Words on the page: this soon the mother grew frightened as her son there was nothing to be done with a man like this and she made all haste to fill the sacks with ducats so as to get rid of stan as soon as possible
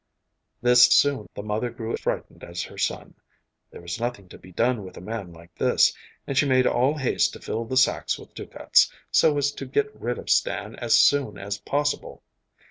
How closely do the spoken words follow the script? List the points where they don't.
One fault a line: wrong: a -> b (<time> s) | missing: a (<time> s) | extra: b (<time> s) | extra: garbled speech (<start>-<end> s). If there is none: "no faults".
no faults